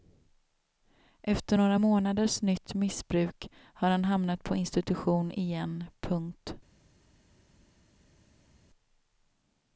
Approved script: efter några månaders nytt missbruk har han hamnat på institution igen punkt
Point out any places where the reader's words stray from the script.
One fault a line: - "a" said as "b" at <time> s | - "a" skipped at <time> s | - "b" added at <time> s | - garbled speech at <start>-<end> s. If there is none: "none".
none